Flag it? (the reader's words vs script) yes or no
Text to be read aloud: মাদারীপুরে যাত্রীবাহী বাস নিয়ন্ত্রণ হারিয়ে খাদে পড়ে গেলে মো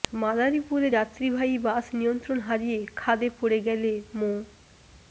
no